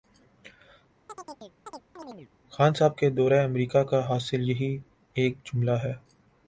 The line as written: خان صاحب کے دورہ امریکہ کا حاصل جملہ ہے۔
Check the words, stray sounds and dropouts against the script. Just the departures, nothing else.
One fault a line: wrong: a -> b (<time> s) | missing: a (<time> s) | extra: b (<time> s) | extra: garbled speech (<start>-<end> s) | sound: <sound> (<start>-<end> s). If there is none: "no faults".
sound: chirp (1.1-2.3 s)
extra: یہی ایک (4.5 s)